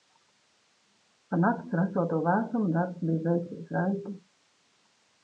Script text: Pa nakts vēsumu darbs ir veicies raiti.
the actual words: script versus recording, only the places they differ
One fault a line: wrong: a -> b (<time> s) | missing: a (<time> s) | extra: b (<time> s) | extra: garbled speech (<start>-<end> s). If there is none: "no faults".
extra: rasoto (1.8 s)
wrong: ir -> bija (3.1 s)